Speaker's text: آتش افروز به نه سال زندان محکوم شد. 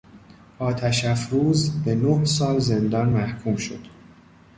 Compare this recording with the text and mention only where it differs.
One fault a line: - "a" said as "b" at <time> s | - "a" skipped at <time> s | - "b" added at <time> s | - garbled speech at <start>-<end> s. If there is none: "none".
none